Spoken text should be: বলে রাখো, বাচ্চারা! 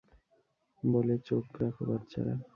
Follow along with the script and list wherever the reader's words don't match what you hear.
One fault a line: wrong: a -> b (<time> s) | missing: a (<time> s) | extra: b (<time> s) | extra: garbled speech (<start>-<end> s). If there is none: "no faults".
extra: চোখ (1.3 s)